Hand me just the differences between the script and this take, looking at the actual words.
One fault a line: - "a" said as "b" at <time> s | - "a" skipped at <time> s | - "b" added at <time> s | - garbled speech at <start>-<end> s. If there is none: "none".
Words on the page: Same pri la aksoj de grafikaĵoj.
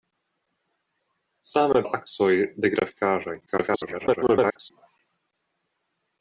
- "pri" skipped at 1.8 s
- garbled speech at 3.5-4.7 s